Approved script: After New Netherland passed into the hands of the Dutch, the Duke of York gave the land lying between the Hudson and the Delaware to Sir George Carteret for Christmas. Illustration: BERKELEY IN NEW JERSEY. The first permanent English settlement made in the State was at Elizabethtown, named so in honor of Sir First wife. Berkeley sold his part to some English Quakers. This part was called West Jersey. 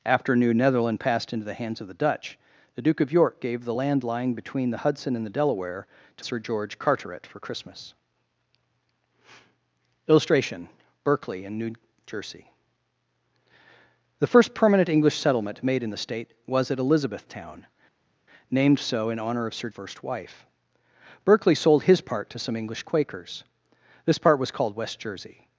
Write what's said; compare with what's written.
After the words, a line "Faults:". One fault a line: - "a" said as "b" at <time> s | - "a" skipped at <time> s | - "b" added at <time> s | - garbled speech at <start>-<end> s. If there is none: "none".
After New Netherland passed into the hands of the Dutch, the Duke of York gave the land lying between the Hudson and the Delaware to Sir George Carteret for Christmas. Illustration: BERKELEY IN NEW JERSEY. The first permanent English settlement made in the State was at Elizabethtown, named so in honor of Sir First wife. Berkeley sold his part to some English Quakers. This part was called West Jersey.
Faults:
none